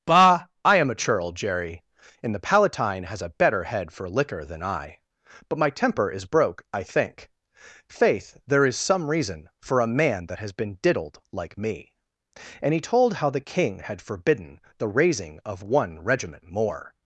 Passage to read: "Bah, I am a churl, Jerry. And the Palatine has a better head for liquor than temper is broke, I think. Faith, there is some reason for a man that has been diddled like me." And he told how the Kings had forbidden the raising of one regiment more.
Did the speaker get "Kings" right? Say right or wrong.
wrong